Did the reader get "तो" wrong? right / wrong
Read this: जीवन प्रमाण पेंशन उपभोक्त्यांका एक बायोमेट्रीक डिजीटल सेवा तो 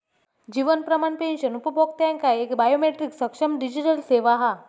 wrong